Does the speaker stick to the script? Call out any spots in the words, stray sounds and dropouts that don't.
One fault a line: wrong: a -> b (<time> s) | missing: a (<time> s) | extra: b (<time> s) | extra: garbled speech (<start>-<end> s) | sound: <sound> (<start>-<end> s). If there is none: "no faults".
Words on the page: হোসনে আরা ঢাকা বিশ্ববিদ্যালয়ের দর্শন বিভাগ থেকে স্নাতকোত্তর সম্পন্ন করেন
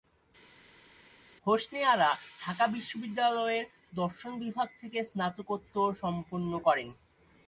no faults